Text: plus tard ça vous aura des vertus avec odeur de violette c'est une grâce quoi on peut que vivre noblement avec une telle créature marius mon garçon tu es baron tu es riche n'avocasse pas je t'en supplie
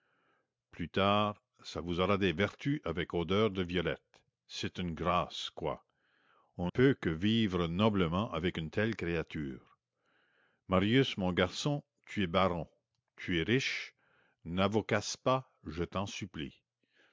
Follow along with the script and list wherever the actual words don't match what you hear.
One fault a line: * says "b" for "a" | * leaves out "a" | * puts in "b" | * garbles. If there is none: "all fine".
all fine